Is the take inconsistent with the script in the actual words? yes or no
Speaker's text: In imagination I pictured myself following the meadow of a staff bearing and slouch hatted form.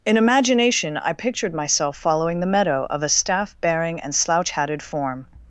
no